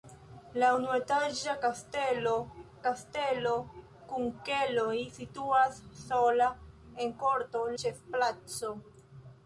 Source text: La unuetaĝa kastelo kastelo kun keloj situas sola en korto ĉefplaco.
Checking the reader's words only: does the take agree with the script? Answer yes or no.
yes